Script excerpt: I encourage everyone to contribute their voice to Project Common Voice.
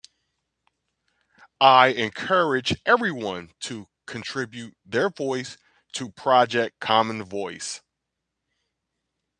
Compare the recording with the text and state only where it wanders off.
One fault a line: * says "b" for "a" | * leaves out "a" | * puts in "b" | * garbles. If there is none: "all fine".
all fine